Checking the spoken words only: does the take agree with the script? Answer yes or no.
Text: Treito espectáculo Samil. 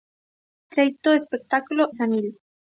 yes